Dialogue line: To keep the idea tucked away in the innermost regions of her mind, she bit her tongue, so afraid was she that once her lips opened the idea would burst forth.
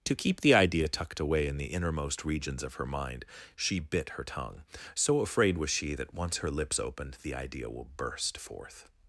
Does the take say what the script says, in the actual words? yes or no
no